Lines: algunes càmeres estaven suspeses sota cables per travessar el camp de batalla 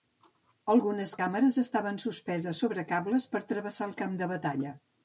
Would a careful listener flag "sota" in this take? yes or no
yes